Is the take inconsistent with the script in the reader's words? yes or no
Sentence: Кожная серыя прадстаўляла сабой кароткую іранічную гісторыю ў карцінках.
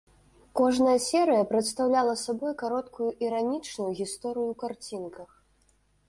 no